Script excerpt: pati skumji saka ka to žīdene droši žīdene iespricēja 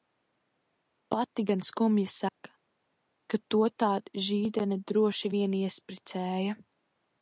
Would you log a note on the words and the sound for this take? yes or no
yes